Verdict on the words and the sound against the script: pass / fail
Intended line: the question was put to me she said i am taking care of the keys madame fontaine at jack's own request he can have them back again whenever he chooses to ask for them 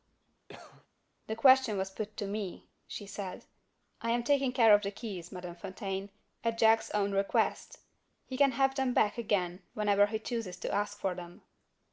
fail